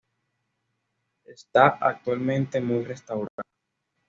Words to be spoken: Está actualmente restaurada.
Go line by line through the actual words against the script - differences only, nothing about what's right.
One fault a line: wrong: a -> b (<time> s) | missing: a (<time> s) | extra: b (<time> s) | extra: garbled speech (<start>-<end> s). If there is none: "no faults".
extra: muy (2.6 s)